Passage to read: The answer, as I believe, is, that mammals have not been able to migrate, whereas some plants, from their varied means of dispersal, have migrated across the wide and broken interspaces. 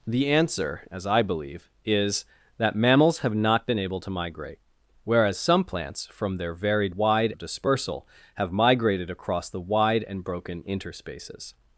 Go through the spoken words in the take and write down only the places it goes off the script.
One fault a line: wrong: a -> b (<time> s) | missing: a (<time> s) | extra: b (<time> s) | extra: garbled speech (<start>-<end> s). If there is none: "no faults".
wrong: means -> wide (6.9 s)